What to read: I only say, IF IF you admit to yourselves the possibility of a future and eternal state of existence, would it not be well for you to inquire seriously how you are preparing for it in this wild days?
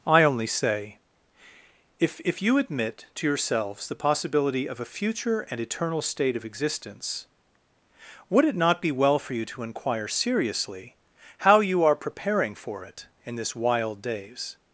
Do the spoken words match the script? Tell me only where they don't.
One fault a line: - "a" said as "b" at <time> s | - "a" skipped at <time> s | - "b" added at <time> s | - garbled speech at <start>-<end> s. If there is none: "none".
none